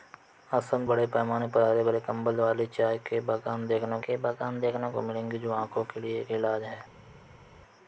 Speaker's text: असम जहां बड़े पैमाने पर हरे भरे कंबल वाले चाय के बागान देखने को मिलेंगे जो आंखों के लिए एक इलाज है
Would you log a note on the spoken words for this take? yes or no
yes